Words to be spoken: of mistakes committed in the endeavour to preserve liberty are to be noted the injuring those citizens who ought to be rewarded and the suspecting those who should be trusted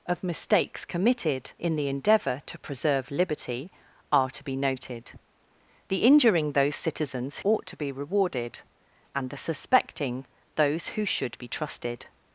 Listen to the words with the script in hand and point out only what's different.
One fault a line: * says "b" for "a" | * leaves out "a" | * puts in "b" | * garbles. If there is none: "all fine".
* leaves out "who"